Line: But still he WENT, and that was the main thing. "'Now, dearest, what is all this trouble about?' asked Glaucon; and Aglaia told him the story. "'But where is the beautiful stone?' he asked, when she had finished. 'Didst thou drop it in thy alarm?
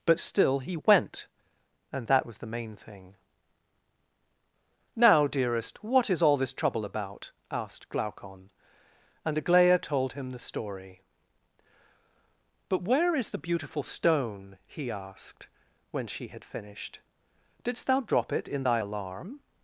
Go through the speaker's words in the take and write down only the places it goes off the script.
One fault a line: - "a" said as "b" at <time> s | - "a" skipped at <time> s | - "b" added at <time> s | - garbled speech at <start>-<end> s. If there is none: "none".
none